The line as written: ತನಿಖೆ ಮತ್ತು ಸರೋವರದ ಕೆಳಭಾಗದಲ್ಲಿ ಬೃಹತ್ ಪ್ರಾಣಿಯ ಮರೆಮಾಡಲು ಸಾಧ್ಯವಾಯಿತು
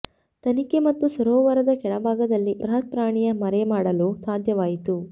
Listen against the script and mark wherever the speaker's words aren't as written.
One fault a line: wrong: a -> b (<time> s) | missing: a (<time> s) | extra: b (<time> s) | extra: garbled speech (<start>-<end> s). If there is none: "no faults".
no faults